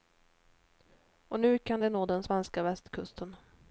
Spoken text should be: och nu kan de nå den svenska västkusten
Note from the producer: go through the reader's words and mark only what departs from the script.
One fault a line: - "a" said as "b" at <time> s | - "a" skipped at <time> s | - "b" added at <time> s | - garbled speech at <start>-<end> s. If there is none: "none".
none